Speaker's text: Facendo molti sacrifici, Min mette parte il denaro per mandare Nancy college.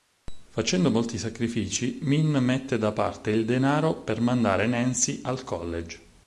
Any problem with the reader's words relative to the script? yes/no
yes